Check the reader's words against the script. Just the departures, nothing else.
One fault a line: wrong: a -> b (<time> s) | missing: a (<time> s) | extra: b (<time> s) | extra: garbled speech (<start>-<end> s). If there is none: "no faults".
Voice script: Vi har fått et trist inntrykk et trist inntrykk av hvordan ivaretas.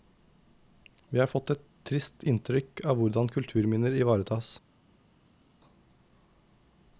missing: et trist inntrykk (2.8 s)
extra: kulturminner (3.3 s)